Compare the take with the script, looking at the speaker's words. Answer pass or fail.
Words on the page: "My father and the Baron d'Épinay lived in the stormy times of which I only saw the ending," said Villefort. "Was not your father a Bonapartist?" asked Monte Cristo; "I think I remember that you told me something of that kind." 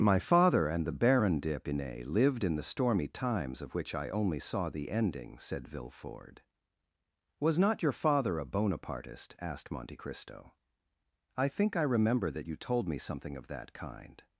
pass